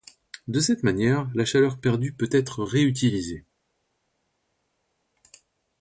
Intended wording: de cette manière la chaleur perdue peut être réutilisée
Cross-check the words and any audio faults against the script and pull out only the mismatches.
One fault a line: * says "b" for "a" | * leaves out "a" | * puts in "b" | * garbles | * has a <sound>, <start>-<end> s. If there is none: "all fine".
all fine